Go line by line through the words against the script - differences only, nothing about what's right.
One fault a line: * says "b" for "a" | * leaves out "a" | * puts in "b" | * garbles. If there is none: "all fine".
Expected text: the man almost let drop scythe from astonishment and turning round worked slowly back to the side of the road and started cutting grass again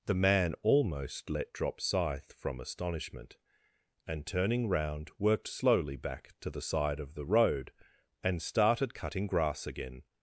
all fine